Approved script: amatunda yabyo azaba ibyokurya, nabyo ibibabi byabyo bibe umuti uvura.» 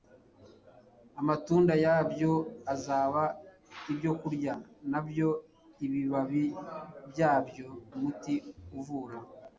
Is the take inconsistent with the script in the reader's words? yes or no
yes